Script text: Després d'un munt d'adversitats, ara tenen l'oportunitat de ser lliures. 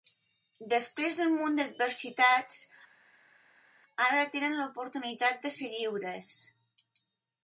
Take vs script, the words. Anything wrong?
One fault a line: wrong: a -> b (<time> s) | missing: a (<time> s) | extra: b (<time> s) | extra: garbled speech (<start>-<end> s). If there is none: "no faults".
no faults